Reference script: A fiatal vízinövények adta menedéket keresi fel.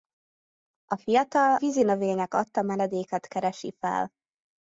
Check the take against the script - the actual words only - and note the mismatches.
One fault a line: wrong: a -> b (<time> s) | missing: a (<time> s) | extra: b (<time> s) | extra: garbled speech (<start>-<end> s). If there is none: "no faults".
no faults